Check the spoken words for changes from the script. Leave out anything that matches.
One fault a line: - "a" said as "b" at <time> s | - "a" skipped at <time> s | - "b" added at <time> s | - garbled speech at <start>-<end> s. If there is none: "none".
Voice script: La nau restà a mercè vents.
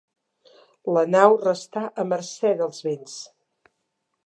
- "dels" added at 2.6 s